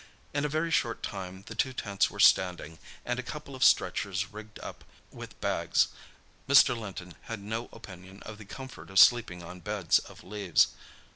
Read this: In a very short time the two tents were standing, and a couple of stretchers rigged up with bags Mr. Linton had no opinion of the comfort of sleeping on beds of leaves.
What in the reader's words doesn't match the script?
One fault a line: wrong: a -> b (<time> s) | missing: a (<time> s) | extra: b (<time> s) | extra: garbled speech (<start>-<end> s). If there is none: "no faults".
no faults